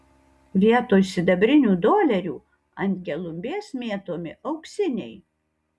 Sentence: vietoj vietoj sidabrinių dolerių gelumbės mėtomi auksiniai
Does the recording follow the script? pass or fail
fail